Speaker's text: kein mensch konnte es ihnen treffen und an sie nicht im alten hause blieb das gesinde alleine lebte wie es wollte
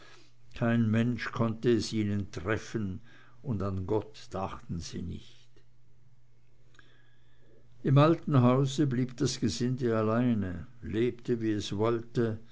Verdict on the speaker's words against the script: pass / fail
fail